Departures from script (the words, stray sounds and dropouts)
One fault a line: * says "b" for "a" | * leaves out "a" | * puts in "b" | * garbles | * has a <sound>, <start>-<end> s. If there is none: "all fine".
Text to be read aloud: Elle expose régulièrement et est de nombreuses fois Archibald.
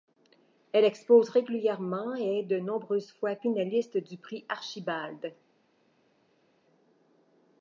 * puts in "finaliste du Prix"